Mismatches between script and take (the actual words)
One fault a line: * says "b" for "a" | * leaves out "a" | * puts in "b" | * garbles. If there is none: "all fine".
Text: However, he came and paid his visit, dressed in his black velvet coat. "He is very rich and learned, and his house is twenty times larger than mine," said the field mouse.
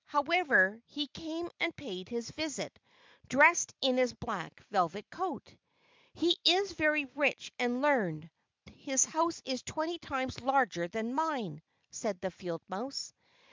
* leaves out "and"